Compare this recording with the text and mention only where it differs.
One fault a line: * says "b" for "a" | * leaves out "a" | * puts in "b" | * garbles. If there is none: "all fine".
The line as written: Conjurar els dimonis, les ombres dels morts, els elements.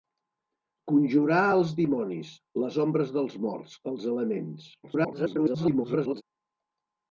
* garbles